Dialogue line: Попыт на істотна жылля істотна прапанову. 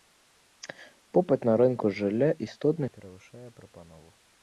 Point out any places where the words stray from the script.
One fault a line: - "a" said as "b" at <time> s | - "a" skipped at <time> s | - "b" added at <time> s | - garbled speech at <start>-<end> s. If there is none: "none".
- "істотна" said as "рынку" at 1.6 s
- "перавышае" added at 3.0 s